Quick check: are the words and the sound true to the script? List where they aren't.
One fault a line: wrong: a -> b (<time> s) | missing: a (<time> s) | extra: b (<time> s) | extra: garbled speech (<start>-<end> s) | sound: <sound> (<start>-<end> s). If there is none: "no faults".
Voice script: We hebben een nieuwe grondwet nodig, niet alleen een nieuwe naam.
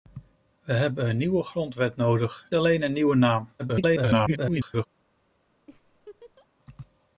missing: niet (2.5 s)
extra: garbled speech (3.6-4.9 s)
sound: laugh (5.7-6.5 s)